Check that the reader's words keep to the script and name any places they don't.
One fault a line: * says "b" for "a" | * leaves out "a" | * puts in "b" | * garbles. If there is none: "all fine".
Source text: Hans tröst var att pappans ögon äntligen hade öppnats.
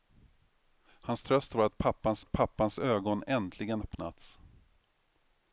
* puts in "att pappans"
* leaves out "hade"